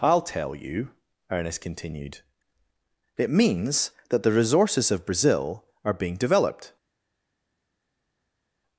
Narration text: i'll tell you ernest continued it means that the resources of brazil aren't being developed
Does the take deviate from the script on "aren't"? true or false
true